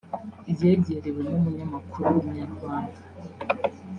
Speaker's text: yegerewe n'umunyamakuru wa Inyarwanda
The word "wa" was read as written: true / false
false